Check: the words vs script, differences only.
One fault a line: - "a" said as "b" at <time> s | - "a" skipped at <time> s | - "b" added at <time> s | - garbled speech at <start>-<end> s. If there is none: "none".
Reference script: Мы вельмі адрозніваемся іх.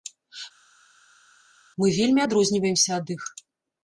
- "ад" added at 3.0 s